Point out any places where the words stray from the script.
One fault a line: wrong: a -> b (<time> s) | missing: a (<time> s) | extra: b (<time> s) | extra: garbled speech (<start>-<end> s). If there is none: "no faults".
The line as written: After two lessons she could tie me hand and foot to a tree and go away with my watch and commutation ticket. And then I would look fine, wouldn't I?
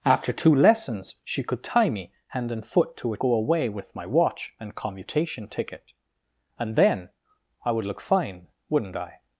missing: tree and (3.2 s)